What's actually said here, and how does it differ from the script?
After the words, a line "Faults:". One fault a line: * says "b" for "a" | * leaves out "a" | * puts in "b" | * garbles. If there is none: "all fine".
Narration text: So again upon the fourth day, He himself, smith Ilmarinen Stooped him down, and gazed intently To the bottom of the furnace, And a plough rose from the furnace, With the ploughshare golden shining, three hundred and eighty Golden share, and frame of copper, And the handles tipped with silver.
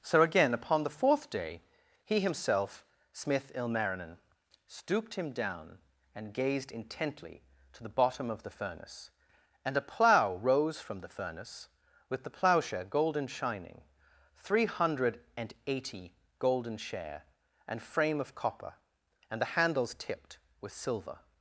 So again upon the fourth day, He himself, smith Ilmarinen Stooped him down, and gazed intently To the bottom of the furnace, And a plough rose from the furnace, With the ploughshare golden shining, three hundred and eighty Golden share, and frame of copper, And the handles tipped with silver.
Faults:
all fine